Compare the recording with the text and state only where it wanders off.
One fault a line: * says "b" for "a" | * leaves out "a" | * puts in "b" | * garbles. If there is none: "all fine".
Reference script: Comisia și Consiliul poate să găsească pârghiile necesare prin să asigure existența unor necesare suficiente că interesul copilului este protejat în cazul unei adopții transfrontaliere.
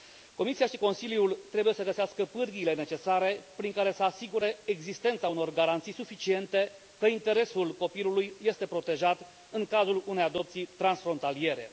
* says "trebuie" for "poate"
* puts in "care"
* says "garanții" for "necesare"